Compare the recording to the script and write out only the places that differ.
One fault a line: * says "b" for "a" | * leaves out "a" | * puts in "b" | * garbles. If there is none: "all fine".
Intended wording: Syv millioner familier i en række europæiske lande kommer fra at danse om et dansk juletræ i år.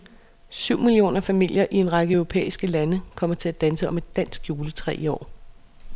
* says "til" for "fra"